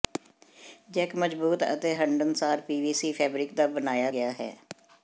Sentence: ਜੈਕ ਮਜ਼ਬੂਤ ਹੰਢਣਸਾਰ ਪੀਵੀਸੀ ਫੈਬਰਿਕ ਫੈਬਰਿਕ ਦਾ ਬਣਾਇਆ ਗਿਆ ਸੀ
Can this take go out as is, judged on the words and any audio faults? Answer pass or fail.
fail